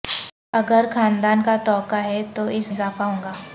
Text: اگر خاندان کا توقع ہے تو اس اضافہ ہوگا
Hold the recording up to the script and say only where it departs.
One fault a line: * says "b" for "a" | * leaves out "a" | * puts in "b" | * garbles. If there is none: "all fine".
all fine